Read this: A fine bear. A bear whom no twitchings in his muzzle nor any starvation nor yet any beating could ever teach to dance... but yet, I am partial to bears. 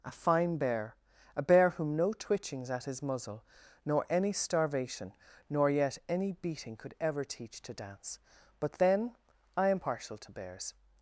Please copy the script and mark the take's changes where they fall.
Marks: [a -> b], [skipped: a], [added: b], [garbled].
A fine bear. A bear whom no twitchings [in -> at] his muzzle nor any starvation nor yet any beating could ever teach to dance... but [yet, -> then] I am partial to bears.